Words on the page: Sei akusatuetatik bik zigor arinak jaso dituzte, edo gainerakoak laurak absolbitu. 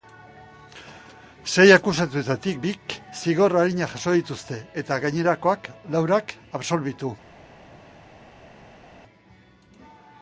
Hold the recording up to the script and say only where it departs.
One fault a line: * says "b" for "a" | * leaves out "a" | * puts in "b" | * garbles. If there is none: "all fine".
* says "eta" for "edo"